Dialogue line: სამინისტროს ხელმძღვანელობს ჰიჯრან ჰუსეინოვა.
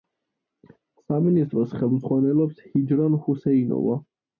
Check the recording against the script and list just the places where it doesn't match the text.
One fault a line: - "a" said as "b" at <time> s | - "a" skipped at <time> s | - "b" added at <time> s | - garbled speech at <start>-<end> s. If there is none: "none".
none